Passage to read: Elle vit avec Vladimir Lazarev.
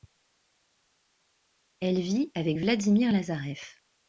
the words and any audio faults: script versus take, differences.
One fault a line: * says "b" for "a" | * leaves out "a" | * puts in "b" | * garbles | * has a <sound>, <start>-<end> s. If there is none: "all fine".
all fine